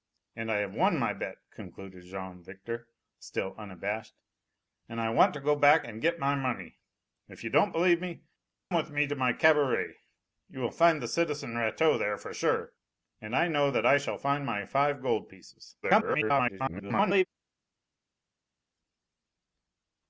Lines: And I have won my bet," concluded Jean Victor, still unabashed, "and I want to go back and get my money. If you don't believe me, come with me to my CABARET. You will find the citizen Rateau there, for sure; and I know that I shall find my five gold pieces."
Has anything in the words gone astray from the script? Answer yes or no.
yes